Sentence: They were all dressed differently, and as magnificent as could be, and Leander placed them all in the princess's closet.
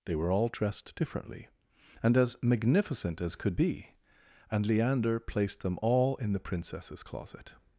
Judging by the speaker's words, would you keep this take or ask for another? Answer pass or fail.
pass